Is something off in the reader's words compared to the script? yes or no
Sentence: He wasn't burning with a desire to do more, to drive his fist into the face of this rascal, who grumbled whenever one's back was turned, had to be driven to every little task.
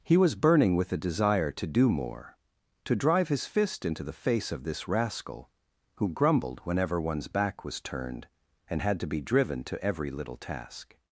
yes